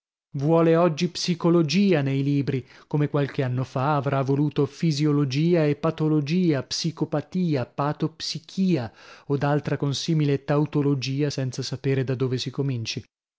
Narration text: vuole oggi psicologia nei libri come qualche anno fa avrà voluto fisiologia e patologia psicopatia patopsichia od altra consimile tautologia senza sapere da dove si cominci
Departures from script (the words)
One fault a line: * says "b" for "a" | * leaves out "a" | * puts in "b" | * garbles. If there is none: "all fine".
all fine